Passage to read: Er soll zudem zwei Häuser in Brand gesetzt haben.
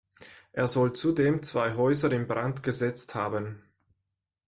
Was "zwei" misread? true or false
false